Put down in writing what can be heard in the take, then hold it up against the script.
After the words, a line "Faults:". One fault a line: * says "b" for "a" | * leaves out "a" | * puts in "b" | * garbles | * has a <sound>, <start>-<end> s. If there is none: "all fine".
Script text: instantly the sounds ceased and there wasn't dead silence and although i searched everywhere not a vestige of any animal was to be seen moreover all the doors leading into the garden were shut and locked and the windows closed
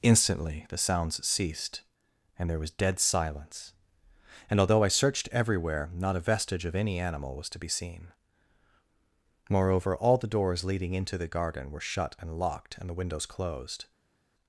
instantly the sounds ceased and there was dead silence and although i searched everywhere not a vestige of any animal was to be seen moreover all the doors leading into the garden were shut and locked and the windows closed
Faults:
* says "was" for "wasn't"